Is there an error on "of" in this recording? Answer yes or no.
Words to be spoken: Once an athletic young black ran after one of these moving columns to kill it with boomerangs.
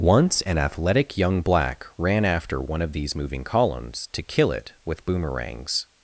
no